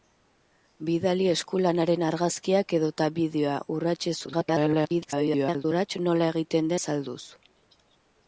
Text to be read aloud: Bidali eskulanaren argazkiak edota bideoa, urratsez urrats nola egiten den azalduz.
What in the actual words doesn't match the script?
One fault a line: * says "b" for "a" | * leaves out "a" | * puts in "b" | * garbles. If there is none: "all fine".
* garbles
* leaves out "den"